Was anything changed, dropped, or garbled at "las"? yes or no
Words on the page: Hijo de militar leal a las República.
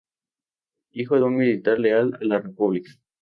yes